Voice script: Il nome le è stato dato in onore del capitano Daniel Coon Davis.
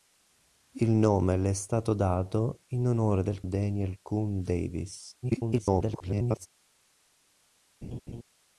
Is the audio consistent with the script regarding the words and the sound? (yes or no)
no